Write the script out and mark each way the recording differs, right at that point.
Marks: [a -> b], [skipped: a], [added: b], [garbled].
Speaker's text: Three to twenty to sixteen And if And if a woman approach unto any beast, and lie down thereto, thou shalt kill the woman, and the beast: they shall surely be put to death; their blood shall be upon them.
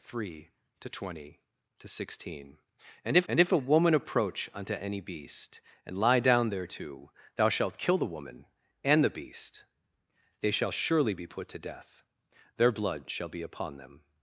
Three to twenty to sixteen And if And if a woman approach unto any beast, and lie down thereto, thou shalt kill the woman, and the beast: they shall surely be put to death; their blood shall be upon them.